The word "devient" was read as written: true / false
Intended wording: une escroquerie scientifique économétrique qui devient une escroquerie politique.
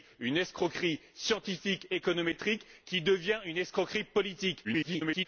true